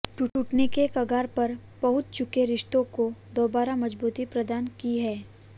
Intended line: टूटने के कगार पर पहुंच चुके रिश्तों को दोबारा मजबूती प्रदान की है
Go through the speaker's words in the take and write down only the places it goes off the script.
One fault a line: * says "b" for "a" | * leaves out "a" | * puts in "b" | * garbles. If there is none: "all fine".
all fine